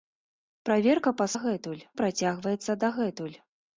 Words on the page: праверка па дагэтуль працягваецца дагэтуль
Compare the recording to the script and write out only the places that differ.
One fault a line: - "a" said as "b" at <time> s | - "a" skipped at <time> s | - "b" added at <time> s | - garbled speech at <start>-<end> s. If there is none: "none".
none